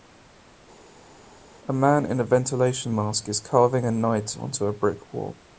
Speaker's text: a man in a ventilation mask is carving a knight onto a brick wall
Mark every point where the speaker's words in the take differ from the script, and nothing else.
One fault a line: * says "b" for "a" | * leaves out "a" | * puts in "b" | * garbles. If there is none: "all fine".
all fine